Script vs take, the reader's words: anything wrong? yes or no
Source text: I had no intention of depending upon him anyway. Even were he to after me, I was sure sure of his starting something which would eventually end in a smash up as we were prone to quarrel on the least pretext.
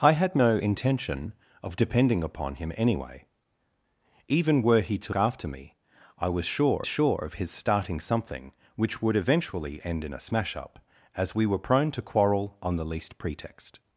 no